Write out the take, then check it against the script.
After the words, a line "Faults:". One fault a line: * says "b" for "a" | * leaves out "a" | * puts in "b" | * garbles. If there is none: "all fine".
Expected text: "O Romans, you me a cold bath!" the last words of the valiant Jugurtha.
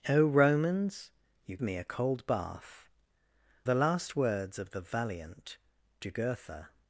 "O Romans, you me a cold bath!" the last words of the valiant Jugurtha.
Faults:
all fine